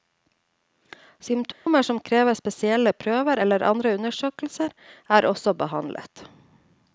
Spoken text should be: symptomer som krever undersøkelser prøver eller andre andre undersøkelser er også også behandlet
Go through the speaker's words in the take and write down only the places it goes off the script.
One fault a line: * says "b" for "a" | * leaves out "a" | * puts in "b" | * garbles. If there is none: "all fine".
* says "spesielle" for "undersøkelser"
* leaves out "andre"
* leaves out "også"